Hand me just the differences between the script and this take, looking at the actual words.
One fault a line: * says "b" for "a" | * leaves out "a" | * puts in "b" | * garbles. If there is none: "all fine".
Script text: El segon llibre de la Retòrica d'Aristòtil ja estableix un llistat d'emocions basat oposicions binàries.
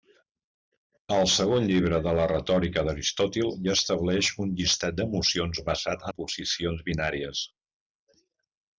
all fine